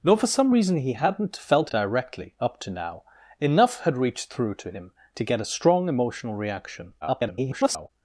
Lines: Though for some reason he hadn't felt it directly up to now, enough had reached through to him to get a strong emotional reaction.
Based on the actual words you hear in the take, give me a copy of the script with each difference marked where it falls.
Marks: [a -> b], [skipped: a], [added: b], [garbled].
Though for some reason he hadn't felt [skipped: it] directly up to now, enough had reached through to him to get a strong emotional reaction. [garbled]